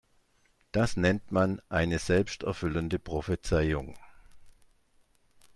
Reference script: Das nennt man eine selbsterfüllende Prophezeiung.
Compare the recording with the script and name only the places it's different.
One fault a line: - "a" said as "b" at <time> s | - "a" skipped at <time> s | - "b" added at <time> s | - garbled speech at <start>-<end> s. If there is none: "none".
none